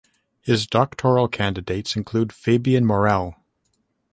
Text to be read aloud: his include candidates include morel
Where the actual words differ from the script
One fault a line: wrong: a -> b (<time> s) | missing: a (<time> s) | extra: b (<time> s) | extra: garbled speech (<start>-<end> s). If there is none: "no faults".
wrong: include -> doctoral (0.7 s)
extra: fabien (2.3 s)